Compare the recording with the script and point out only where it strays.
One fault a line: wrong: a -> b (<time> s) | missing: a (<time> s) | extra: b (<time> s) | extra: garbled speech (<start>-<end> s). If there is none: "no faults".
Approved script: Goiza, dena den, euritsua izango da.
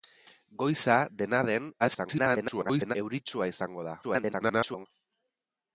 extra: garbled speech (1.8-3.0 s)
extra: garbled speech (4.0-4.9 s)